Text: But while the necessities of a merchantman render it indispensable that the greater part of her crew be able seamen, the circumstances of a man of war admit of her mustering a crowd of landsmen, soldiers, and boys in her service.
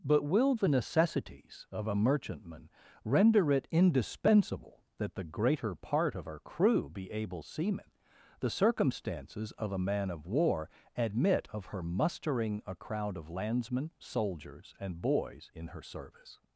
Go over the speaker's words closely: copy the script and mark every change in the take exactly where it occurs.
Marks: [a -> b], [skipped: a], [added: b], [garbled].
But [while -> will] the necessities of a merchantman render it indispensable that the greater part of her crew be able seamen, the circumstances of a man of war admit of her mustering a crowd of landsmen, soldiers, and boys in her service.